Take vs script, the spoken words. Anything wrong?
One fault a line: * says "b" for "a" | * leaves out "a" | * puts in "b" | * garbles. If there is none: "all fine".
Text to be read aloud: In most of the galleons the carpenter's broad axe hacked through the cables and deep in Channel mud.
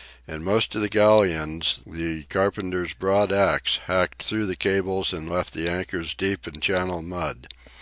* puts in "left the anchors"